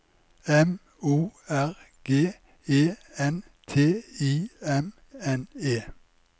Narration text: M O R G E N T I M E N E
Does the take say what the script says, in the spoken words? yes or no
no